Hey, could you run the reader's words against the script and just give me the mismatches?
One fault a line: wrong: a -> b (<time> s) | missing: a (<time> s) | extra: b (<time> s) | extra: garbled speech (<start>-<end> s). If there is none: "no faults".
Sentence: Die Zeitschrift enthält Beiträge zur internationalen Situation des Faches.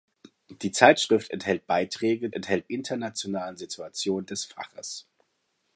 wrong: zur -> enthält (2.3 s)